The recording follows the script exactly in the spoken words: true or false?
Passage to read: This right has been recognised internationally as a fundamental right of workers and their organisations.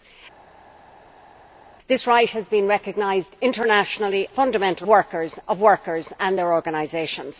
false